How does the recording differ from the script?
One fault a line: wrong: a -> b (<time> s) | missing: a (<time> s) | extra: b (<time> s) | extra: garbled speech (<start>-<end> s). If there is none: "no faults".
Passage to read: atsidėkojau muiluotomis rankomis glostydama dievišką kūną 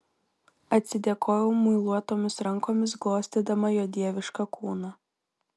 extra: jo (3.8 s)